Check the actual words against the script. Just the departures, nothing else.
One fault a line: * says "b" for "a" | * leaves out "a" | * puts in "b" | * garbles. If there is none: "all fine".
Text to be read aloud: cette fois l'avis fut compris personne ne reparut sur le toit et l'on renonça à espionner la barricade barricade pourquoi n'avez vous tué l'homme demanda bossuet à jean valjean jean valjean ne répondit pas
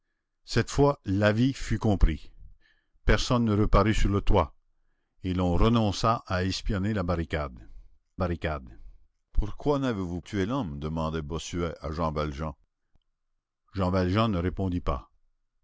all fine